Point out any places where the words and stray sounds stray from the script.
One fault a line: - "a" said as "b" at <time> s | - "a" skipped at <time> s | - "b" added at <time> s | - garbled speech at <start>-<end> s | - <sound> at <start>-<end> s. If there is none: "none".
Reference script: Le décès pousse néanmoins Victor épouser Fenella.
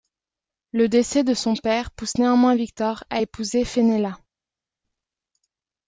- "de son père" added at 1.2 s
- "à" added at 3.1 s